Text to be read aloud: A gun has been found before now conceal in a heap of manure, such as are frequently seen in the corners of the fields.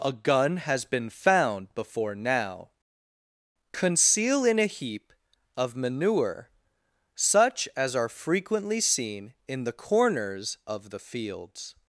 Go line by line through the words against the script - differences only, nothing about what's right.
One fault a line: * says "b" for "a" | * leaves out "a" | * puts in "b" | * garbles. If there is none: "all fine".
all fine